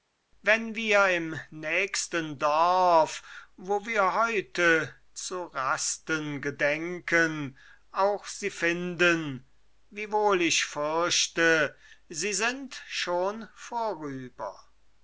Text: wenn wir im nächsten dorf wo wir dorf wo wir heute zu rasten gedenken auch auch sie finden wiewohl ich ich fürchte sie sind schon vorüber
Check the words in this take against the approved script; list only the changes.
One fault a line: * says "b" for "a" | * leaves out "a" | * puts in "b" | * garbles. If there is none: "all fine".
* leaves out "dorf wo wir"
* leaves out "auch"
* leaves out "ich"